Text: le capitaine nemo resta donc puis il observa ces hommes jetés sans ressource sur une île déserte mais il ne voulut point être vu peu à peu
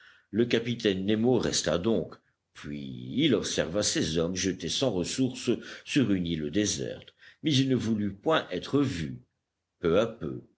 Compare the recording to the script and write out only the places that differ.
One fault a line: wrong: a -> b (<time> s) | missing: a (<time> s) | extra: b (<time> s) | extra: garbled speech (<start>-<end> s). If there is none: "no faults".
no faults